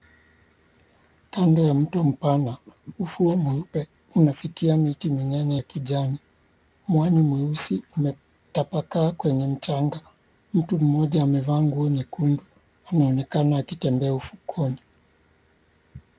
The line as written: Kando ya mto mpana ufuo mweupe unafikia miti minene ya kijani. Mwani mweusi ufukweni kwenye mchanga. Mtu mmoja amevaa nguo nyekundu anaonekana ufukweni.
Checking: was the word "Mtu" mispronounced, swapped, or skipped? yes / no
no